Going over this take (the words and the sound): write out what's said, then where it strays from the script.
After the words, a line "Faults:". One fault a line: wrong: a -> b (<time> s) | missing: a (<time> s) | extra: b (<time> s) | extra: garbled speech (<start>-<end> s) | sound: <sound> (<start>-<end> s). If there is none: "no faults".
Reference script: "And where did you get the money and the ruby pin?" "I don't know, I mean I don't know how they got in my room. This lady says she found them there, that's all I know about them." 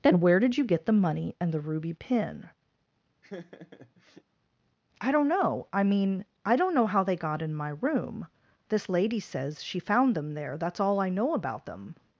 "Then where did you get the money and the ruby pin?" "I don't know, I mean I don't know how they got in my room. This lady says she found them there, that's all I know about them."
Faults:
wrong: And -> Then (0.0 s)
sound: laugh (3.2-4.2 s)